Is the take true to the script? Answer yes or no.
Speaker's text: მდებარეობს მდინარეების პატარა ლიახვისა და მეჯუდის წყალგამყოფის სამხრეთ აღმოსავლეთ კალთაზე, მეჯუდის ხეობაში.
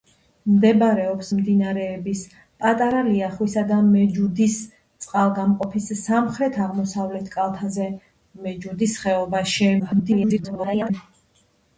no